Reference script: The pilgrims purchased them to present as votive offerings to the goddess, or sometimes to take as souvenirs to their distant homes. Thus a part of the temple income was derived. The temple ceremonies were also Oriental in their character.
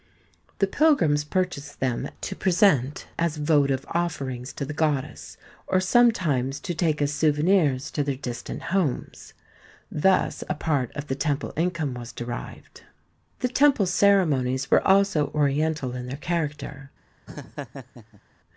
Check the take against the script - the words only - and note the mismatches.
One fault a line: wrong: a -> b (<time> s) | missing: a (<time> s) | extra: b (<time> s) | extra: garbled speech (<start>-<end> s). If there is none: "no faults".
no faults